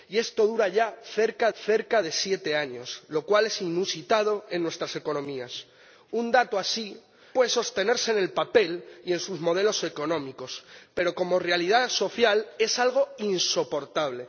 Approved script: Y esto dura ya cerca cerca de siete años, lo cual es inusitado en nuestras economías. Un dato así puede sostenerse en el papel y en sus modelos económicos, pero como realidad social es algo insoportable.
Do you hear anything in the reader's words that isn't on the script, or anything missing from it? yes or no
no